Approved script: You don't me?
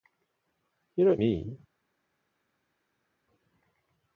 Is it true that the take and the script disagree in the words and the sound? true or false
false